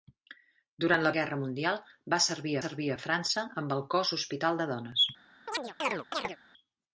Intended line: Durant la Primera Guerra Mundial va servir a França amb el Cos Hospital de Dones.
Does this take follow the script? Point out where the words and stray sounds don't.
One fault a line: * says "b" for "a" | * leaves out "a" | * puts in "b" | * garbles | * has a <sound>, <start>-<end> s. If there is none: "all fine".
* leaves out "Primera"
* puts in "servir"
* has a chirp, 5.5-6.4 s